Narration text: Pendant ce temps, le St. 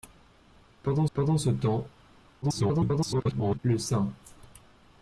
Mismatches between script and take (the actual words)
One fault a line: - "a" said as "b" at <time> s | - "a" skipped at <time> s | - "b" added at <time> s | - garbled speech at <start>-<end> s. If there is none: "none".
- "pendant" added at 1.1 s
- garbled speech at 2.4-3.6 s